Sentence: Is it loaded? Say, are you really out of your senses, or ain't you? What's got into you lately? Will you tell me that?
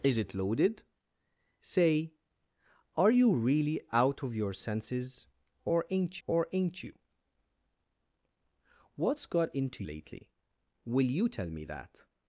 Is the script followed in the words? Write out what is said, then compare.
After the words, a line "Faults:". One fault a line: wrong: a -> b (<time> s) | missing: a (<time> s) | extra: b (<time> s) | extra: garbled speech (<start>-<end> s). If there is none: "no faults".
Is it loaded? Say, are you really out of your senses, or ain't or ain't you? What's got into lately? Will you tell me that?
Faults:
extra: or ain't (6.2 s)
missing: you (9.8 s)